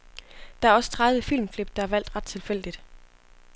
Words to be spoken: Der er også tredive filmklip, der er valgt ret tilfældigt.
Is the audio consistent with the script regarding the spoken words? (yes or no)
yes